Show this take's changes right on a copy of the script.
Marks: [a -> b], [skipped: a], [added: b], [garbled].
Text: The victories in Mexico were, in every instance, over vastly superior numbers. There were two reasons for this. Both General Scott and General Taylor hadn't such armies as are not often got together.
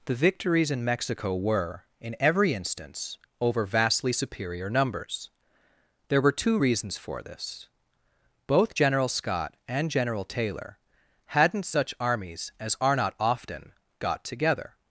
The victories in Mexico were, in every instance, over vastly superior numbers. There were two reasons for this. Both General Scott and General Taylor hadn't such armies as are not often got together.